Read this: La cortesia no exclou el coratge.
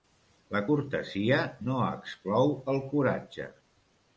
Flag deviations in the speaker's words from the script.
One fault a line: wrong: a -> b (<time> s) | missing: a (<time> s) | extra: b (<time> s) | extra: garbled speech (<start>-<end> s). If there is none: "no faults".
no faults